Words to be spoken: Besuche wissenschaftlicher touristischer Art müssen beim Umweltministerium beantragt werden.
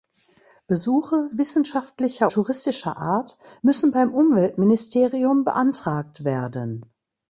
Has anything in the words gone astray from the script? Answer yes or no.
no